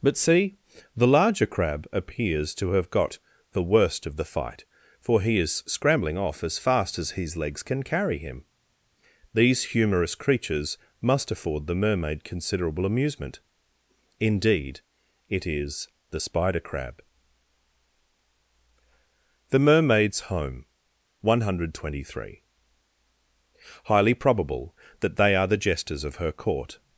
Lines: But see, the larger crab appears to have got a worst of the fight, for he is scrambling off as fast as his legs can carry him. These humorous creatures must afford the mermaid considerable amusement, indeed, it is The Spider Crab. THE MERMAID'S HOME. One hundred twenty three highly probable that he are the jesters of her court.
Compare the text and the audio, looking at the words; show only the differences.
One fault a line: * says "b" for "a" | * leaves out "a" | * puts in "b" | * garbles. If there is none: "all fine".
* says "the" for "a"
* says "they" for "he"